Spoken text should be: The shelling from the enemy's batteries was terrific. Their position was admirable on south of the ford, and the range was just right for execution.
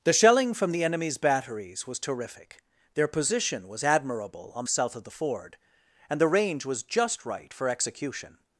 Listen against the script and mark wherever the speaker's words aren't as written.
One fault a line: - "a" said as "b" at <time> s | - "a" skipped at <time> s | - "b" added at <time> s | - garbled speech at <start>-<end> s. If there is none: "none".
none